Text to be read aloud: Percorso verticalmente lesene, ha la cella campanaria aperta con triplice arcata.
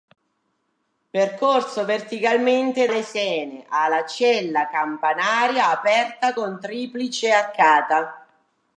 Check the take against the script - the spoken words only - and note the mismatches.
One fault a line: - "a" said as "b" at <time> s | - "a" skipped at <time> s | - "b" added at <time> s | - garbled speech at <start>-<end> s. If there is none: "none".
none